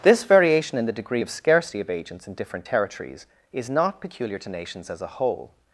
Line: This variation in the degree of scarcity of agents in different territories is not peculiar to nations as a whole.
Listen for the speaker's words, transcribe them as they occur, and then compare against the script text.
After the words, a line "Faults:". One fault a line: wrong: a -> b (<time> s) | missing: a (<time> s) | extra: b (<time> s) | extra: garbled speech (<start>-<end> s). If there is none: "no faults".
This variation in the degree of scarcity of agents in different territories is not peculiar to nations as a whole.
Faults:
no faults